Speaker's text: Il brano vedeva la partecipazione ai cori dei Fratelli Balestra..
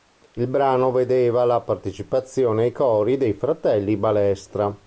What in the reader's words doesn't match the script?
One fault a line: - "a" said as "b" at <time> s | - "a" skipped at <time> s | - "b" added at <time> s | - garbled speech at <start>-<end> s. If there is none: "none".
none